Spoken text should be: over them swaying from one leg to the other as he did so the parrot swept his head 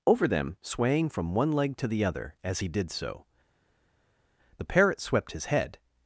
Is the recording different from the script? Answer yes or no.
no